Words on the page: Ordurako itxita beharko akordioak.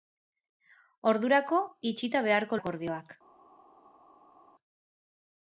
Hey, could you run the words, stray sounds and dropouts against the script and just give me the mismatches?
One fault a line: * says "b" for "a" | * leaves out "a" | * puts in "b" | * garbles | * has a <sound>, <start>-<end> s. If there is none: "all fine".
all fine